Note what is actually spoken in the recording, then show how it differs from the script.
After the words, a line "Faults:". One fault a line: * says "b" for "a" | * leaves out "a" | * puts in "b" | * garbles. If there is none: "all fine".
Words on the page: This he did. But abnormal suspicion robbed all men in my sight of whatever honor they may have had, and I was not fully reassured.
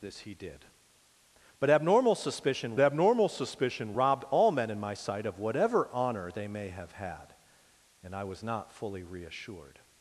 This he did. But abnormal suspicion abnormal suspicion robbed all men in my sight of whatever honor they may have had, and I was not fully reassured.
Faults:
* puts in "abnormal suspicion"